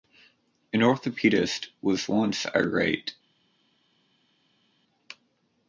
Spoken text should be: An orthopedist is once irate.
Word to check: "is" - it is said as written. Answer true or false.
false